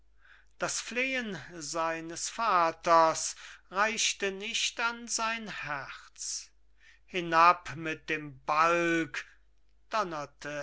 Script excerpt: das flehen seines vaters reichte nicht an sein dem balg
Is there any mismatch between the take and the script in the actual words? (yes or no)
yes